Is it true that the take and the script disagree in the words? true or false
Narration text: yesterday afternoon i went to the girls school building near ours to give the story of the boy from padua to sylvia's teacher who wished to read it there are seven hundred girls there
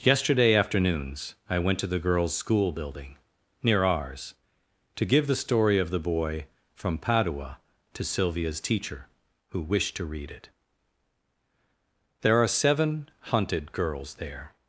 true